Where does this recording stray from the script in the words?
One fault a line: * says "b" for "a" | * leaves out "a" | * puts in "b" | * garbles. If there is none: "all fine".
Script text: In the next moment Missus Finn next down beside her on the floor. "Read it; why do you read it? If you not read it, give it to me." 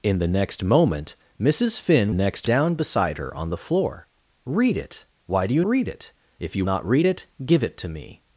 all fine